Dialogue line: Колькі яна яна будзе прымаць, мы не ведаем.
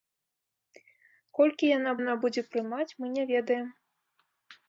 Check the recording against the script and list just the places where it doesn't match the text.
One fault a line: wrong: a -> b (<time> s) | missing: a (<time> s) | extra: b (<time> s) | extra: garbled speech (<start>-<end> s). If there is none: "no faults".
no faults